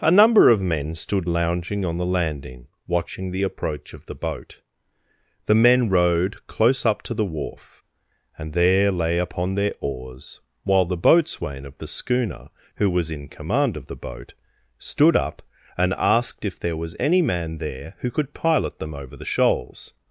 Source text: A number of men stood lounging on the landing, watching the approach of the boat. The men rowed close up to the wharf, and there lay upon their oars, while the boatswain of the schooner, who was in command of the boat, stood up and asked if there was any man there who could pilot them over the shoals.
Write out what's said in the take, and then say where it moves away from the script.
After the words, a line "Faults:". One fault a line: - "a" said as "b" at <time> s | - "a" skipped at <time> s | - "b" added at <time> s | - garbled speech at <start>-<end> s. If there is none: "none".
A number of men stood lounging on the landing, watching the approach of the boat. The men rowed close up to the wharf, and there lay upon their oars, while the boatswain of the schooner, who was in command of the boat, stood up and asked if there was any man there who could pilot them over the shoals.
Faults:
none